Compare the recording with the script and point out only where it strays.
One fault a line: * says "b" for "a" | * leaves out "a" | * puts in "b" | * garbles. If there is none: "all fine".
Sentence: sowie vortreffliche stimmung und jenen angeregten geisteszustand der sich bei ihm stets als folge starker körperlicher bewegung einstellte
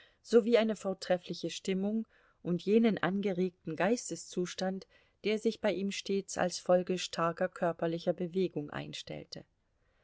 * puts in "eine"